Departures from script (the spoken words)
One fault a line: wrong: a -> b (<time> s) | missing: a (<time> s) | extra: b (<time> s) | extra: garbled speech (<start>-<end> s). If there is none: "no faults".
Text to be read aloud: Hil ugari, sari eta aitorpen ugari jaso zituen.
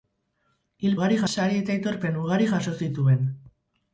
no faults